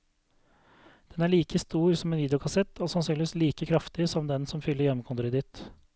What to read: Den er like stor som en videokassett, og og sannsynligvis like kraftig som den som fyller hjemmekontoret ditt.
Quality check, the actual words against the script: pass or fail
fail